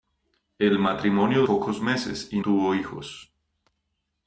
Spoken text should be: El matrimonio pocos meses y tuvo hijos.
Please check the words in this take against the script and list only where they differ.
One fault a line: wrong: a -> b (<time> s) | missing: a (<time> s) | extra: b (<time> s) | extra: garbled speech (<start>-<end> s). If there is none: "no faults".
no faults